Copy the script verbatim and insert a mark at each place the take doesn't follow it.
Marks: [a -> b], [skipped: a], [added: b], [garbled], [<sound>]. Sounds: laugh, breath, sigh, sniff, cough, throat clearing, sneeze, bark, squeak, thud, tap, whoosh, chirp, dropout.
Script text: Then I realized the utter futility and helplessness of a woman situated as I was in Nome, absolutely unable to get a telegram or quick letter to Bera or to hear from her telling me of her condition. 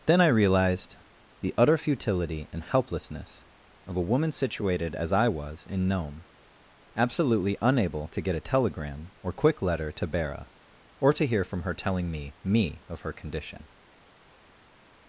Then I realized the utter futility and helplessness of a woman situated as I was in Nome, absolutely unable to get a telegram or quick letter to Bera or to hear from her telling me [added: me] of her condition.